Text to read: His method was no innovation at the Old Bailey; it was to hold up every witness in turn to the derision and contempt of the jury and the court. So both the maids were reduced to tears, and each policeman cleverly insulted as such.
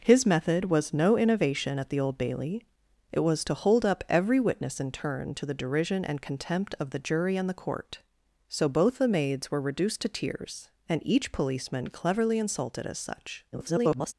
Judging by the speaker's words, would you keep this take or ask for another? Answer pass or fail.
fail